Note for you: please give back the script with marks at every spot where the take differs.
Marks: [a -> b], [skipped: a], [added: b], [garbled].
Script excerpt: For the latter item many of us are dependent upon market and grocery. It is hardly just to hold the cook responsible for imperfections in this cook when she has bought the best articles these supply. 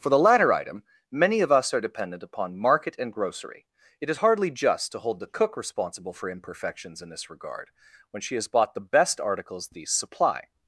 For the latter item many of us are dependent upon market and grocery. It is hardly just to hold the cook responsible for imperfections in this [cook -> regard] when she has bought the best articles these supply.